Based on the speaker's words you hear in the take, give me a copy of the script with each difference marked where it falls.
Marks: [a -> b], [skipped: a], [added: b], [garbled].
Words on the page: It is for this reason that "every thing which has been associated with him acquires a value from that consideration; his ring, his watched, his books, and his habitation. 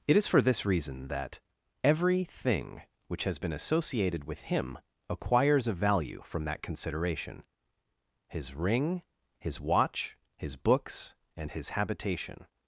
It is for this reason that "every thing which has been associated with him acquires a value from that consideration; his ring, his [watched, -> watch] his books, and his habitation.